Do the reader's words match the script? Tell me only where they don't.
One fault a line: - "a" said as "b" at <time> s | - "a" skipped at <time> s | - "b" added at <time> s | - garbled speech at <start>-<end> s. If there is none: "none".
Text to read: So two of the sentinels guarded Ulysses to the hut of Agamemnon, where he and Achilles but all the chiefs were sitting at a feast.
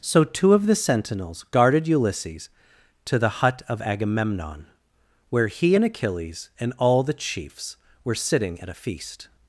- "but" said as "and" at 6.6 s